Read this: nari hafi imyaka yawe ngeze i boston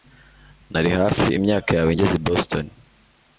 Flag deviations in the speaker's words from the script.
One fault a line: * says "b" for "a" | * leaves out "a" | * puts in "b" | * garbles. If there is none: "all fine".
all fine